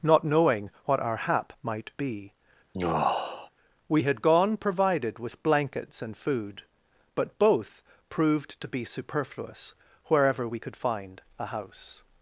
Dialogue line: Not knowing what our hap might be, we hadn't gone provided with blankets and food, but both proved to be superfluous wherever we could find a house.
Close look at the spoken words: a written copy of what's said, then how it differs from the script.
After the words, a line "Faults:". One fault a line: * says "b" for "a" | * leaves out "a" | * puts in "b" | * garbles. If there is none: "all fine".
Not knowing what our hap might be, we had gone provided with blankets and food, but both proved to be superfluous wherever we could find a house.
Faults:
* says "had" for "hadn't"